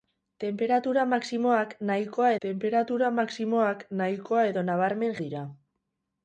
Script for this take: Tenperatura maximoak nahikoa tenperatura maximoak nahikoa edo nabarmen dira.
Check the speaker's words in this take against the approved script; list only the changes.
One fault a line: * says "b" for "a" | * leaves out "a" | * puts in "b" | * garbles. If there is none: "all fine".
all fine